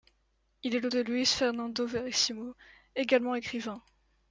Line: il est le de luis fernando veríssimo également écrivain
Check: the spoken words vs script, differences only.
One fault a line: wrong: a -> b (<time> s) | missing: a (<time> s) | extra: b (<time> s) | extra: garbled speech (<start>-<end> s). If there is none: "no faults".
no faults